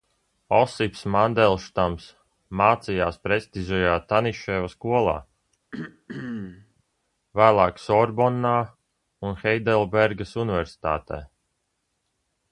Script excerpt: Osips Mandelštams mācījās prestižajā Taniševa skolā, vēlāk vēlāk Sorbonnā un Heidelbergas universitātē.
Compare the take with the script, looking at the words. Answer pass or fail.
fail